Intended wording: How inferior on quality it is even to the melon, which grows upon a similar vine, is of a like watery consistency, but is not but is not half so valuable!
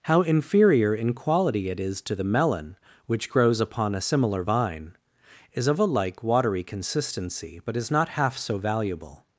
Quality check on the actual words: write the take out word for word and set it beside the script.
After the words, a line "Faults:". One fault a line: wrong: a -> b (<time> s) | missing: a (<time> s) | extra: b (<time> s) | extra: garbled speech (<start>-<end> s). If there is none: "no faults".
How inferior in quality it is to the melon, which grows upon a similar vine, is of a like watery consistency, but is not half so valuable!
Faults:
wrong: on -> in (0.9 s)
missing: even (2.0 s)
missing: but is not (8.1 s)